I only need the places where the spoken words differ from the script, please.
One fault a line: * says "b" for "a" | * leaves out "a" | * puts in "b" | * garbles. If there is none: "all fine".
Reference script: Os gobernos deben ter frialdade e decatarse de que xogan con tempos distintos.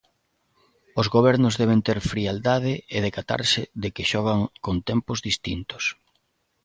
all fine